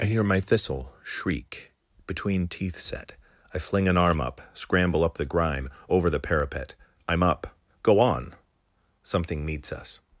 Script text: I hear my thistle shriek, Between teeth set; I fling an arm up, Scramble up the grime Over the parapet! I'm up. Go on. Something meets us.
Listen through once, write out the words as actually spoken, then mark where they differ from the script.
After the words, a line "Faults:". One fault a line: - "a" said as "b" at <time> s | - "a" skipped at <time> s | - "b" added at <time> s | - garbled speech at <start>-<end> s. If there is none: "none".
I hear my thistle shriek, Between teeth set; I fling an arm up, Scramble up the grime Over the parapet! I'm up. Go on. Something meets us.
Faults:
none